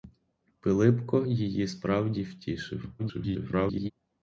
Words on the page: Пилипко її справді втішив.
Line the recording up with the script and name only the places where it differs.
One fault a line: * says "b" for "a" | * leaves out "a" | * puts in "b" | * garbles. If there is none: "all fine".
* garbles